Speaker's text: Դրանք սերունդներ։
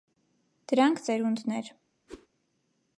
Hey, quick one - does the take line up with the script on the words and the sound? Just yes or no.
no